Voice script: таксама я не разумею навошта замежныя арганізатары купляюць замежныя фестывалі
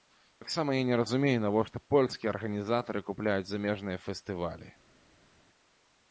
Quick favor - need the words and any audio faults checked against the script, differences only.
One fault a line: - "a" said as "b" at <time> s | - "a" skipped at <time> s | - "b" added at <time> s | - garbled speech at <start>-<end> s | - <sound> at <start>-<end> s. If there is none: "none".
- "замежныя" said as "польскія" at 1.9 s